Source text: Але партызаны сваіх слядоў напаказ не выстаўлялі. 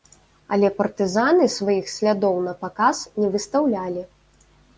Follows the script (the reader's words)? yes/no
yes